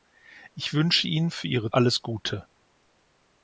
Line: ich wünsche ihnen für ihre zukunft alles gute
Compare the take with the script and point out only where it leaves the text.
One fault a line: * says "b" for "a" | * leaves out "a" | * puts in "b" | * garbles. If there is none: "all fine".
* leaves out "zukunft"